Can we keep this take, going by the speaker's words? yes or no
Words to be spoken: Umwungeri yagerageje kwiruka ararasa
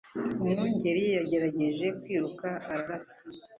yes